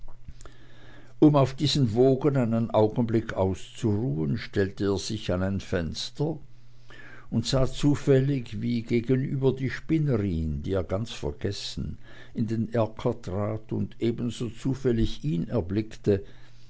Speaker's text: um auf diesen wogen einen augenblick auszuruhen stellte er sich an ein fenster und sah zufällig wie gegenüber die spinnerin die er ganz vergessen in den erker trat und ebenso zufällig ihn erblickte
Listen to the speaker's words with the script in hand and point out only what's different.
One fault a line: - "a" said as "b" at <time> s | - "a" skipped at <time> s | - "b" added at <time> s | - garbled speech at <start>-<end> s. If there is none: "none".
none